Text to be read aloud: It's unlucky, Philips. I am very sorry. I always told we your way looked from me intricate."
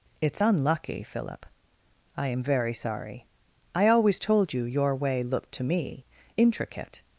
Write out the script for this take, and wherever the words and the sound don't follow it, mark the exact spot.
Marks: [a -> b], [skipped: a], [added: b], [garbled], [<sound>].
It's unlucky, [Philips. -> Philip] I am very sorry. I always told [we -> you] your way looked [from -> to] me intricate."